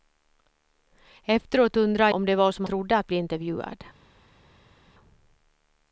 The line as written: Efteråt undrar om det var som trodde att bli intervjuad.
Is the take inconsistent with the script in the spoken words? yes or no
no